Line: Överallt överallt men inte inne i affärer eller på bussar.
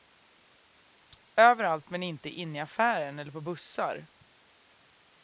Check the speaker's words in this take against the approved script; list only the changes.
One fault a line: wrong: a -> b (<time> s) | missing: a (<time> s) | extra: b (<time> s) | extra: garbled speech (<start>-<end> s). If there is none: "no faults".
missing: överallt (1.9 s)